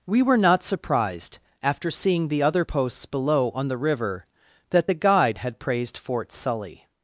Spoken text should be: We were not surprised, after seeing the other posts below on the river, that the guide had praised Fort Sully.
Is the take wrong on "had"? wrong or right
right